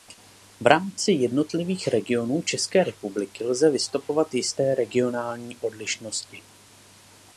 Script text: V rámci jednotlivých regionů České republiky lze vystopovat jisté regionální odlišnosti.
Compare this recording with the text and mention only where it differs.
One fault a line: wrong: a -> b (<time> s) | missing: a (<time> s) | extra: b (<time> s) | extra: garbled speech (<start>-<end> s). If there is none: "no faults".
no faults